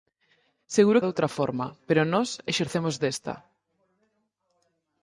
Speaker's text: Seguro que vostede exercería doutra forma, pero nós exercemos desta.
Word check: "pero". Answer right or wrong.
right